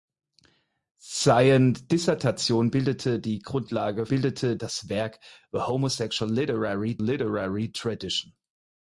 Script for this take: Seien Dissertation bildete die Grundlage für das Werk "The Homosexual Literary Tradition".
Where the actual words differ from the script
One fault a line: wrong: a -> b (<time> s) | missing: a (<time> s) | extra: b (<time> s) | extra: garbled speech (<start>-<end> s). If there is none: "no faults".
wrong: für -> bildete (4.1 s)
extra: Literary (7.0 s)